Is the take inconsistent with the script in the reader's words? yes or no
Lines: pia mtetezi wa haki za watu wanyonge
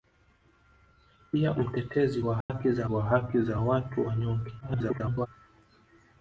yes